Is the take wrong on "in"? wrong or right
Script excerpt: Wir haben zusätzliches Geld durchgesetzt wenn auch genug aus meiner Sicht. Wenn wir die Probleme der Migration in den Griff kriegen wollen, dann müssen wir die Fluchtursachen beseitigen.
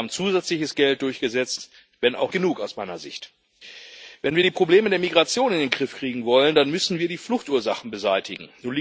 right